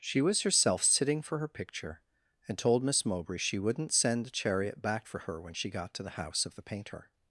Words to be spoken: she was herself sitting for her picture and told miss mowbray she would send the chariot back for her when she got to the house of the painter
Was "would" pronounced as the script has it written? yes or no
no